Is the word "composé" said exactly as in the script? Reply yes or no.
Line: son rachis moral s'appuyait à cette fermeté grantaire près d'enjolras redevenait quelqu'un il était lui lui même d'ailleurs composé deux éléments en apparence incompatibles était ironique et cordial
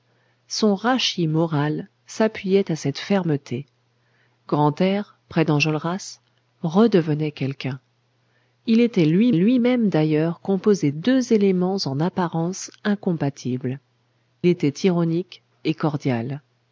yes